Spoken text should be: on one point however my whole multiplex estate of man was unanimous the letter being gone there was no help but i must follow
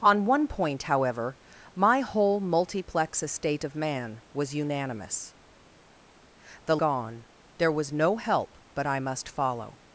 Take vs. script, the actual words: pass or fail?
fail